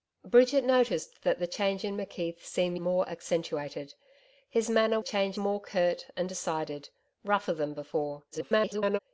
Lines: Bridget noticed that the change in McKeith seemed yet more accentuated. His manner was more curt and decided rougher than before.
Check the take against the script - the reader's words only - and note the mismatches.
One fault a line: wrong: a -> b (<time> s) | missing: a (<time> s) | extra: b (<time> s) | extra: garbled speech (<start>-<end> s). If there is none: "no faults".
missing: yet (2.8 s)
wrong: was -> change (5.0 s)
extra: garbled speech (8.3-9.0 s)